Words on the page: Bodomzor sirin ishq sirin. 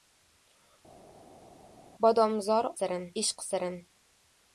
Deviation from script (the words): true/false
false